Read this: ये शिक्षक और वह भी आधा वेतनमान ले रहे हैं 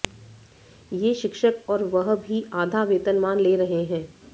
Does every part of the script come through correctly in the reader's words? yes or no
yes